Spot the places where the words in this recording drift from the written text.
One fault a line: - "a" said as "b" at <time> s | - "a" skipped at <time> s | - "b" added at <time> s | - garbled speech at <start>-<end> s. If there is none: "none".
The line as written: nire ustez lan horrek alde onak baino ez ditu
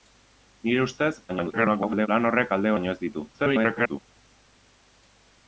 - garbled speech at 1.3-2.1 s
- "onak" skipped at 2.8 s
- garbled speech at 3.3-4.0 s